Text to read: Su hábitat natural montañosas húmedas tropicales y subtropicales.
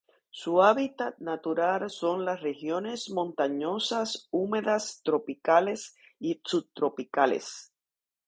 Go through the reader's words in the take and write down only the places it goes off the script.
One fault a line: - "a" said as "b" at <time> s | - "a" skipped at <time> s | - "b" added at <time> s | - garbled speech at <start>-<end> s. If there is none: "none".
- "son las regiones" added at 1.9 s